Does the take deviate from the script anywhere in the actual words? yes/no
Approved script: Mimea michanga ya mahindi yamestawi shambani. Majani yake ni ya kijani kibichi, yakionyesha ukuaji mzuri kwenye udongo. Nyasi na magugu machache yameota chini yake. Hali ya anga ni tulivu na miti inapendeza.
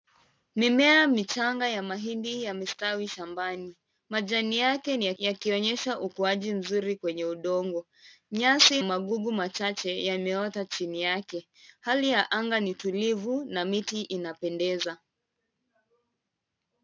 yes